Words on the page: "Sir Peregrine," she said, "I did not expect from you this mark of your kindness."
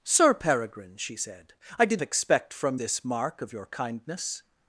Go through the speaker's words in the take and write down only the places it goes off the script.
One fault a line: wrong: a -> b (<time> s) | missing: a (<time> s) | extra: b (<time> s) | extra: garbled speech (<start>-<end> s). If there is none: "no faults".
missing: not (2.0 s)
missing: you (2.8 s)